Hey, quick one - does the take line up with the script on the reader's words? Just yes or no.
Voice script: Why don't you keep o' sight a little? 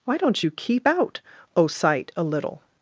no